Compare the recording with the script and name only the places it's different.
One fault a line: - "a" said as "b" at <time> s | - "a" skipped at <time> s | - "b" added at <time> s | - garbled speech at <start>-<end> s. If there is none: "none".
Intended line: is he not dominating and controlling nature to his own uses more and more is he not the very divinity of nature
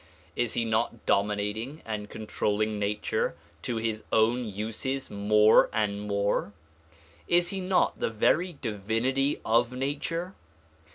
none